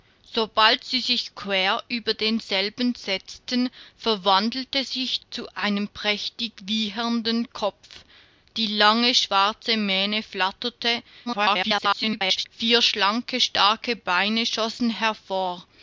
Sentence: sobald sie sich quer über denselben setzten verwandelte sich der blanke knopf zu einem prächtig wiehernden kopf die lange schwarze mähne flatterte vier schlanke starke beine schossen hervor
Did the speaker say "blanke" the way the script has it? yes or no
no